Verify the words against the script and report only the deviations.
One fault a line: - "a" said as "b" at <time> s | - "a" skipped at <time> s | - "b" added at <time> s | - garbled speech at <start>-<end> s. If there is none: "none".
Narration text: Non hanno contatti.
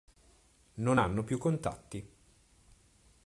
- "più" added at 1.2 s